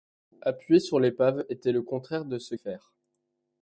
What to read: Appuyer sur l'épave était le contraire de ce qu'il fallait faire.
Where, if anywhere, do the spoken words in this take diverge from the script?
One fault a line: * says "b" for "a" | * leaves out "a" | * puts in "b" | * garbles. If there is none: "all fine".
* leaves out "qu'il fallait"